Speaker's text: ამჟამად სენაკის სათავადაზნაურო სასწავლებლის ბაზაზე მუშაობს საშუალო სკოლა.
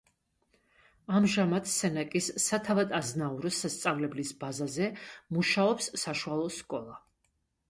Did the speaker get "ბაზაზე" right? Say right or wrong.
right